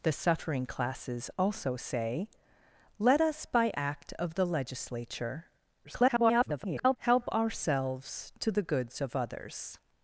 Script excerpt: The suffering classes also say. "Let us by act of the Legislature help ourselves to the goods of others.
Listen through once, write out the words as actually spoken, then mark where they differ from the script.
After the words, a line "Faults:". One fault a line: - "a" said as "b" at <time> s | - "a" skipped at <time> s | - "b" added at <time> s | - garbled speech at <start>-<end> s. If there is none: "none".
The suffering classes also say. "Let us by act of the Legislature [garbled] help ourselves to the goods of others.
Faults:
- garbled speech at 5.8-7.0 s